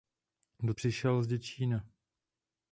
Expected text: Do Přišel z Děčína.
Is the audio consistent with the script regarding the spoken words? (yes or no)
yes